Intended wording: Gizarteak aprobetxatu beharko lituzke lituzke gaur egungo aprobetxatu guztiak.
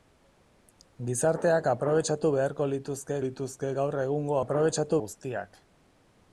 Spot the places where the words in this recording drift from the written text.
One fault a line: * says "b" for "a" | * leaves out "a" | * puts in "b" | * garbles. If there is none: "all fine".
all fine